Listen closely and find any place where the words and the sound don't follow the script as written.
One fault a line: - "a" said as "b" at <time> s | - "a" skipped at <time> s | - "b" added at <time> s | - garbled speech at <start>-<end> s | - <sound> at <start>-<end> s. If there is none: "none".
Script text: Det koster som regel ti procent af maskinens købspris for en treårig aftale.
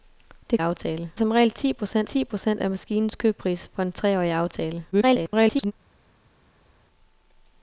- "koster" said as "aftale" at 0.6 s
- "ti procent" added at 2.0 s
- garbled speech at 4.9-5.7 s